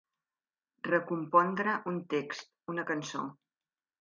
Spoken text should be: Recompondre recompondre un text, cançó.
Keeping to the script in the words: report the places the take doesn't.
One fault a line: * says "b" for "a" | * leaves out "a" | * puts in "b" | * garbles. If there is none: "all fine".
* leaves out "recompondre"
* puts in "una"